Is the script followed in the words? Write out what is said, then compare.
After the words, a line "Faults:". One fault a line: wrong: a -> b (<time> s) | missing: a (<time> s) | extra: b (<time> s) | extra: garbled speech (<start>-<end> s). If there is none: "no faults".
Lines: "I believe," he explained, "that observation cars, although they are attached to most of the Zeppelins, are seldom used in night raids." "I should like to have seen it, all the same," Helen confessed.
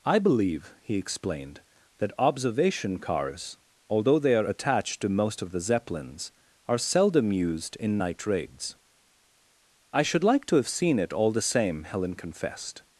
"I believe," he explained, "that observation cars, although they are attached to most of the Zeppelins, are seldom used in night raids." "I should like to have seen it, all the same," Helen confessed.
Faults:
no faults